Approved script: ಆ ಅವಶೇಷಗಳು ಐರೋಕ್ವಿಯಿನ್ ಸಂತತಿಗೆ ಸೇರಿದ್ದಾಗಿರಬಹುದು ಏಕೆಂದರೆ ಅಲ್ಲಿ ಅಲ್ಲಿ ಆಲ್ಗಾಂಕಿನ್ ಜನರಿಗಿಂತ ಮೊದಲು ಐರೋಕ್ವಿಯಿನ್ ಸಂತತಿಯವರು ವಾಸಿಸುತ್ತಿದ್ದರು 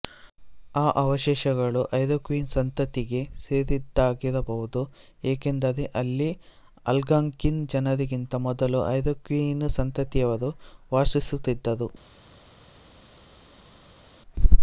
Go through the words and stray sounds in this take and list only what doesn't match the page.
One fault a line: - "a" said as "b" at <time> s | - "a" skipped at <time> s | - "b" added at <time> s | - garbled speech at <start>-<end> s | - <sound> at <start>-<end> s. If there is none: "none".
- "ಅಲ್ಲಿ" skipped at 6.3 s